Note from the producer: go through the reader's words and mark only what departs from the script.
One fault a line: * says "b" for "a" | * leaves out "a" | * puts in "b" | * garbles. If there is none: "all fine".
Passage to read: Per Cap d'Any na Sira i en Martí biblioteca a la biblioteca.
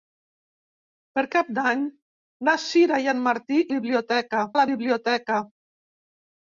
all fine